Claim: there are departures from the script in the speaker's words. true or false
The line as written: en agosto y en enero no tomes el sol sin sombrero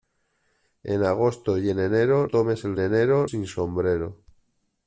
true